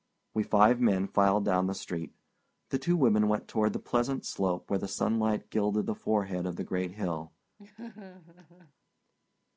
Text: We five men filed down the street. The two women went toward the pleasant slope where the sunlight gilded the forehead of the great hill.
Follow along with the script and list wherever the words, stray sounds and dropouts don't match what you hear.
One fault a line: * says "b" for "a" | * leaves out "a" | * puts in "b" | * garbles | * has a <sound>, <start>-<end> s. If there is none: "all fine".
* has a laugh, 7.6-8.7 s